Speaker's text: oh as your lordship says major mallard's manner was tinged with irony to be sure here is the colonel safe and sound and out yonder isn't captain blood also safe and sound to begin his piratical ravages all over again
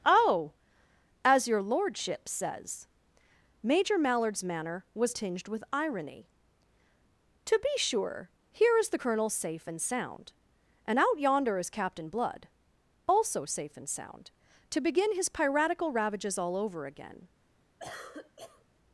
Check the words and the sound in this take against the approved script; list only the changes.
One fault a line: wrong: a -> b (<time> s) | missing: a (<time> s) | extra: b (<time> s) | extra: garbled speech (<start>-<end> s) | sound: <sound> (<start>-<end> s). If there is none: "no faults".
wrong: isn't -> is (11.6 s)
sound: cough (17.8-18.7 s)